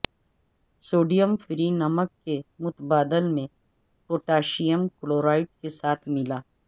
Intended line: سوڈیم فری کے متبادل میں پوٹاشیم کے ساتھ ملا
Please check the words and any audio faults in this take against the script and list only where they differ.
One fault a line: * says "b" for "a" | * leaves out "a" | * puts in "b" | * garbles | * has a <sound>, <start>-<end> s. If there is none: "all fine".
* puts in "نمک"
* puts in "کلورائڈ"